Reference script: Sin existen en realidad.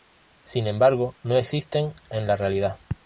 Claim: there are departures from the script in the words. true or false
true